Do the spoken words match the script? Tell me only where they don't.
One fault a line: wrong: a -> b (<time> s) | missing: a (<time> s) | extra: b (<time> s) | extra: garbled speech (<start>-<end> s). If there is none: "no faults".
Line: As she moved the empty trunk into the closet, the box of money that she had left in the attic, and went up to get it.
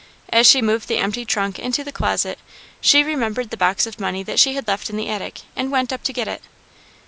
extra: she remembered (2.8 s)